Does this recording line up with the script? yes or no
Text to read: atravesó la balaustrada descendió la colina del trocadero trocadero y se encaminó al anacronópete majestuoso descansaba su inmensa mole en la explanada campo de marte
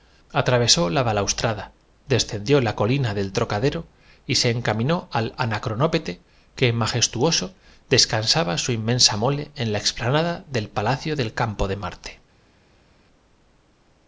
no